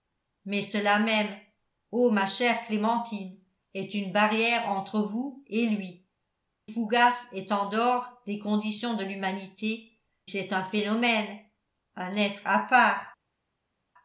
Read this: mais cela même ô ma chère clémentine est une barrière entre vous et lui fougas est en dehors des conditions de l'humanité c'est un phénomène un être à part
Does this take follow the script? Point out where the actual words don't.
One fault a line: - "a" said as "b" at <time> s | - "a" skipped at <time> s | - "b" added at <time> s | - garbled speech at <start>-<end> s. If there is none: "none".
none